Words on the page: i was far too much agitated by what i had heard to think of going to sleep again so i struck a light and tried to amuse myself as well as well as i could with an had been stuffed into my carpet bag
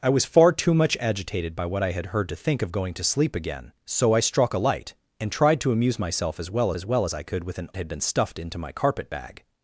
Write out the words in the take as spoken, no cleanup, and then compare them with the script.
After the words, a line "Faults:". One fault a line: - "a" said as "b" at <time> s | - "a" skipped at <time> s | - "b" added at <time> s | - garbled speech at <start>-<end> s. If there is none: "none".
i was far too much agitated by what i had heard to think of going to sleep again so i struck a light and tried to amuse myself as well as well as i could with an had been stuffed into my carpet bag
Faults:
none